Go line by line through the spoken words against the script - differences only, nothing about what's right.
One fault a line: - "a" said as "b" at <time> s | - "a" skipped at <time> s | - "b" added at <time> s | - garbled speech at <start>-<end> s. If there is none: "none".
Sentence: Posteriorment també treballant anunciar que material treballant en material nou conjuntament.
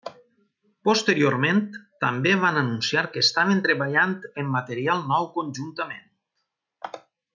- "treballant" said as "van" at 2.5 s
- "material" said as "estaven" at 3.3 s